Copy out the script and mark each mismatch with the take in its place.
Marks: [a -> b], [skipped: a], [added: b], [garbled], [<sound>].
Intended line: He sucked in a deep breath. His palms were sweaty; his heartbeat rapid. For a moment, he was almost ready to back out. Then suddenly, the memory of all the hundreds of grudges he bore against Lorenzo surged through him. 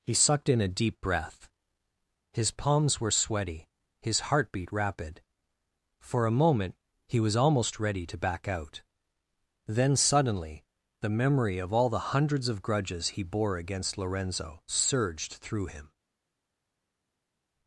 He sucked in a deep breath. His palms were sweaty; his heartbeat rapid. For a moment, he was almost ready to back out. Then suddenly, the memory of all the hundreds of grudges he bore against Lorenzo surged through him.